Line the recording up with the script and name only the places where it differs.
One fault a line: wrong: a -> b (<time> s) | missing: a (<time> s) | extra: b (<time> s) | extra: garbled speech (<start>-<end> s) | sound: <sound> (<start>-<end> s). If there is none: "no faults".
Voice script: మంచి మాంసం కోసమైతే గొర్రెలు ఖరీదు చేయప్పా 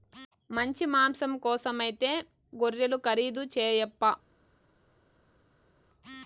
no faults